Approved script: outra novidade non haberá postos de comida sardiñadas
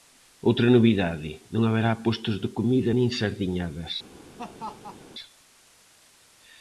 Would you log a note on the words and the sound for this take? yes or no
yes